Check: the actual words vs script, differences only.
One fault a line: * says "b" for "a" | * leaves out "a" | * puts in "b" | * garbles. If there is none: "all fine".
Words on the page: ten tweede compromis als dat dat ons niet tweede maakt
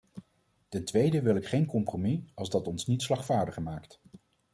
* puts in "wil ik geen"
* leaves out "dat"
* says "slagvaardiger" for "tweede"